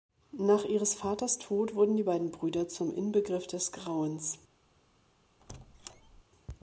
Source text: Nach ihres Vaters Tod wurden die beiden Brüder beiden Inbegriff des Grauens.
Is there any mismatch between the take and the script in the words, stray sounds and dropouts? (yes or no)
yes